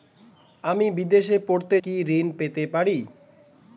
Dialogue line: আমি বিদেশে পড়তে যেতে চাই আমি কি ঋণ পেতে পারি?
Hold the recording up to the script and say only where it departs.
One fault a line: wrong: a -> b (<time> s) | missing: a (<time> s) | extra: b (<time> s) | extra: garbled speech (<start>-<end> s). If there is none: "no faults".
missing: যেতে চাই আমি (1.8 s)